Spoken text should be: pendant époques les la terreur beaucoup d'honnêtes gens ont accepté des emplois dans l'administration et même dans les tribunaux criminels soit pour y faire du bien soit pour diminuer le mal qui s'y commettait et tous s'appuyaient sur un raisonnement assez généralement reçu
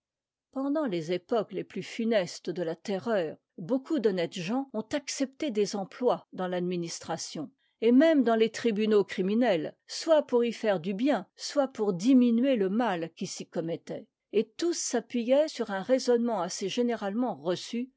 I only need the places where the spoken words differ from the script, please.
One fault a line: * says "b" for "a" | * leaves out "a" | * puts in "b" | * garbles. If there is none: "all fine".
* puts in "les"
* puts in "plus funestes de"